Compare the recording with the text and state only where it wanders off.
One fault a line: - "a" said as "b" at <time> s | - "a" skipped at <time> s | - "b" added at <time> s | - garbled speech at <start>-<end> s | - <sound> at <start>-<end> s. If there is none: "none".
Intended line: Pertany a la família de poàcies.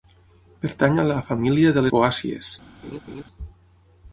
- laugh at 2.8-3.2 s